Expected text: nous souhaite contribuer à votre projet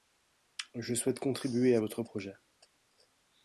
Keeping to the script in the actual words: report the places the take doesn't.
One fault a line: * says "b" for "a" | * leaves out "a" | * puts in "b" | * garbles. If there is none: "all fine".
* says "je" for "nous"